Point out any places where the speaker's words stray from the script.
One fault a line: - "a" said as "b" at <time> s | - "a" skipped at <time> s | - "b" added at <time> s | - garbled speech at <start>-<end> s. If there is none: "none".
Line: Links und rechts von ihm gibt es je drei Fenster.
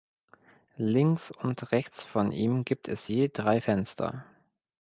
none